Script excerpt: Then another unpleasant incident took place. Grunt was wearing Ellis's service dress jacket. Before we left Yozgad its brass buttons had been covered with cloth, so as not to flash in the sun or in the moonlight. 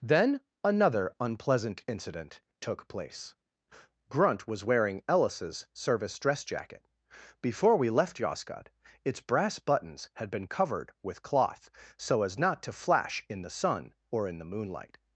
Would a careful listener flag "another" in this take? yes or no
no